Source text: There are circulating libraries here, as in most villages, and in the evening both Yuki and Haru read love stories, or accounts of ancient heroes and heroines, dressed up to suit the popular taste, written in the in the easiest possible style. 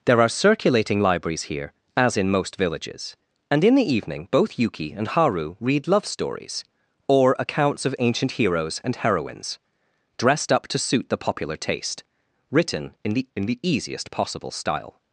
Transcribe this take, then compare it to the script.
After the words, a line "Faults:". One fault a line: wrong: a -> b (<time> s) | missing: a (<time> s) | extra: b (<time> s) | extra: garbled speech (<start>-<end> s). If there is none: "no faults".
There are circulating libraries here, as in most villages, and in the evening both Yuki and Haru read love stories, or accounts of ancient heroes and heroines, dressed up to suit the popular taste, written in the in the easiest possible style.
Faults:
no faults